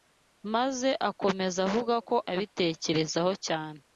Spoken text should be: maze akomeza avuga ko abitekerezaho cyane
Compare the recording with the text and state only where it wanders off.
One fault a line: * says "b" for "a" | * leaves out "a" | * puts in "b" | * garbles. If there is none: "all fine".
all fine